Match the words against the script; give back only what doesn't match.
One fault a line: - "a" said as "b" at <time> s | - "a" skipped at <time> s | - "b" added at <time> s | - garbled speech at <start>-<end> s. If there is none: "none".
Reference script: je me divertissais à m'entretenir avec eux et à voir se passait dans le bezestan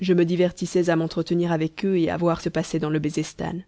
none